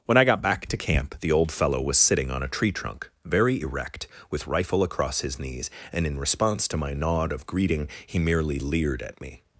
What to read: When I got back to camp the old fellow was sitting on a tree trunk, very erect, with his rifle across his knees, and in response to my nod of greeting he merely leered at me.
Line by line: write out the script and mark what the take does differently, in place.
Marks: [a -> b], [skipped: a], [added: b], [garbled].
When I got back to camp the old fellow was sitting on a tree trunk, very erect, with [skipped: his] rifle across his knees, and in response to my nod of greeting he merely leered at me.